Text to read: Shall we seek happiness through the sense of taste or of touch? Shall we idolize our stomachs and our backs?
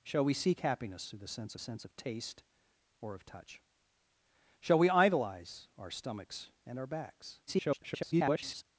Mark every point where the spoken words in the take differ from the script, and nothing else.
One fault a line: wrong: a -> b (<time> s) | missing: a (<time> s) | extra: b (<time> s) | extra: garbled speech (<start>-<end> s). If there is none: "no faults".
extra: sense (1.6 s)
extra: garbled speech (7.5-8.6 s)